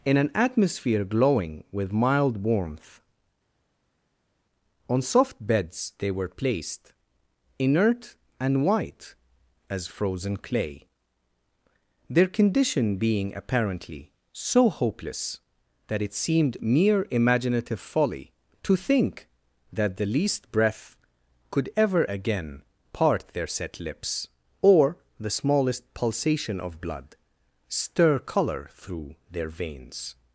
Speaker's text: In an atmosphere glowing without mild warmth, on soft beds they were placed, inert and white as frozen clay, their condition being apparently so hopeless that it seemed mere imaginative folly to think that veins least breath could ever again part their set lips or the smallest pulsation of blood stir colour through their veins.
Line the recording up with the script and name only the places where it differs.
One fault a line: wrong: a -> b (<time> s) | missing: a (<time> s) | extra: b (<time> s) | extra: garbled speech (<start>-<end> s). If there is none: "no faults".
wrong: without -> with (1.7 s)
wrong: veins -> the (20.0 s)